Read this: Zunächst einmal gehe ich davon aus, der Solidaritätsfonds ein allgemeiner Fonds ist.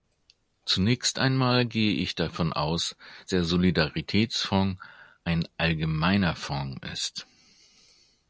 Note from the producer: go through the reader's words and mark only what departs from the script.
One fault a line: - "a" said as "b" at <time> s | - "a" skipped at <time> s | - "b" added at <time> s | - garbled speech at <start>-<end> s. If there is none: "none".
none